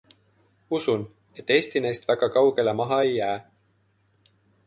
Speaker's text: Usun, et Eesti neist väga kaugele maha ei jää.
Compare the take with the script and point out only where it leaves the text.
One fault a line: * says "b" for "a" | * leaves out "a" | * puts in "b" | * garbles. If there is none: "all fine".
all fine